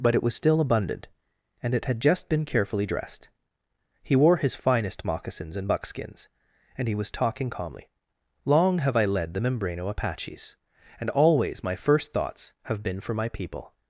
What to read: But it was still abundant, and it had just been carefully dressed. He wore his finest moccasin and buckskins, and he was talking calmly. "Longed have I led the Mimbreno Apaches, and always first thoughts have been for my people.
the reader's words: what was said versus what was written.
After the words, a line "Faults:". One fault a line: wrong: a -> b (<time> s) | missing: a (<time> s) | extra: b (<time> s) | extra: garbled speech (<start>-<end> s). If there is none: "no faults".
But it was still abundant, and it had just been carefully dressed. He wore his finest moccasins and buckskins, and he was talking calmly. "Long have I led the Mimbreno Apaches, and always my first thoughts have been for my people.
Faults:
wrong: moccasin -> moccasins (5.0 s)
wrong: Longed -> Long (8.5 s)
extra: my (11.6 s)